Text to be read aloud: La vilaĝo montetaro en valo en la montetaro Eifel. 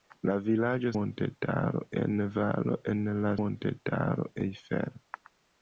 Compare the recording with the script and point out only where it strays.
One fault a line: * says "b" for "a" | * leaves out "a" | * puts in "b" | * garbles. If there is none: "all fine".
all fine